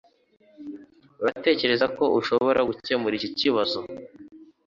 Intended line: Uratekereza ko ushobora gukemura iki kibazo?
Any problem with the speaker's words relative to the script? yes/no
no